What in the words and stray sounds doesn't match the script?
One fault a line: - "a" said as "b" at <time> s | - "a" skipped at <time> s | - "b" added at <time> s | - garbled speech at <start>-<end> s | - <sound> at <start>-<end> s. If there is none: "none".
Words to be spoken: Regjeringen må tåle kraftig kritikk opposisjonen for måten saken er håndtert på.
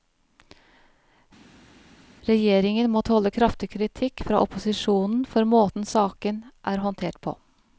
- "fra" added at 4.3 s